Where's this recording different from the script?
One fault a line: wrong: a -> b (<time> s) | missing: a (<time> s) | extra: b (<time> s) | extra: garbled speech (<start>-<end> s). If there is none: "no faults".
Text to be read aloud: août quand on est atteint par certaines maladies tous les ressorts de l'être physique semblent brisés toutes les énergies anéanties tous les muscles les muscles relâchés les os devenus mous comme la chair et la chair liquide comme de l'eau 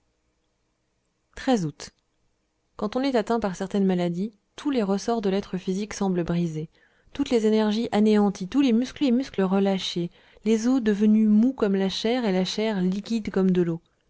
no faults